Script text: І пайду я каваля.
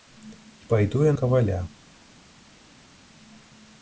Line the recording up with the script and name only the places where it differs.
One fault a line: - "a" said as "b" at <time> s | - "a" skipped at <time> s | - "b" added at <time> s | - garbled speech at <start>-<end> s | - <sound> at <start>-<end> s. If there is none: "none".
none